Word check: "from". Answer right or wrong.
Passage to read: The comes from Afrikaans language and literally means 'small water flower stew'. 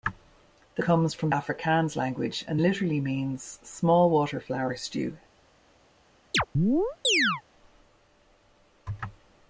right